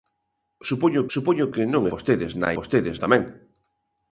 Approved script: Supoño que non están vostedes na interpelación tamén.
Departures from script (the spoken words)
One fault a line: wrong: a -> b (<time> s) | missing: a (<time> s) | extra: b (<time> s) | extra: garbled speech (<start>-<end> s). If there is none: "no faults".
extra: supoño (1.1 s)
missing: están (1.8 s)
wrong: interpelación -> vostedes (2.6 s)